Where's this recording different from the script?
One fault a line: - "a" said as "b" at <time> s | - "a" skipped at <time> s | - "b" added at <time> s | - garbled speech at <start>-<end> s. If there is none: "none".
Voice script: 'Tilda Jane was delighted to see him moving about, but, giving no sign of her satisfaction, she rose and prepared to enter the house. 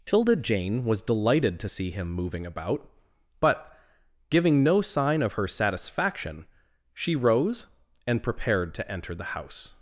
none